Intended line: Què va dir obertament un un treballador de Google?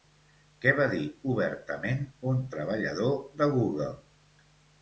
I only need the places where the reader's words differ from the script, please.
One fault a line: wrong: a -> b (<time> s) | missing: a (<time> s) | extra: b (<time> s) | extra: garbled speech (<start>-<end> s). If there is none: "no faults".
missing: un (2.4 s)